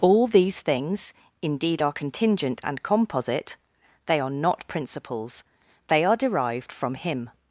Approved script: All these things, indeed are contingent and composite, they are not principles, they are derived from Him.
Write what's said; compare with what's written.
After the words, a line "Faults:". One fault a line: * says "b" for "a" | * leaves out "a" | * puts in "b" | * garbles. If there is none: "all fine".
All these things, indeed are contingent and composite, they are not principles, they are derived from Him.
Faults:
all fine